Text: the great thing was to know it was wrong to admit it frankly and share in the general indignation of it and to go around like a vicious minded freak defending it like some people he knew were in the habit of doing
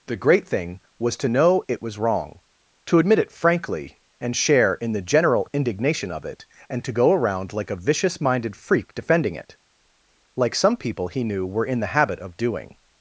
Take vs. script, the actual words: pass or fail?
pass